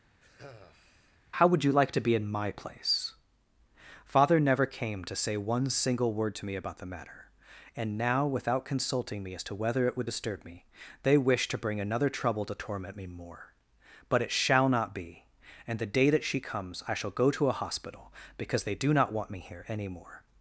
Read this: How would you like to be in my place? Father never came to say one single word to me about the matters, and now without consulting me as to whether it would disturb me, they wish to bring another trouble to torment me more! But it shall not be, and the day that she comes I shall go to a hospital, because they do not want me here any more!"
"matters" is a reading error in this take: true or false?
true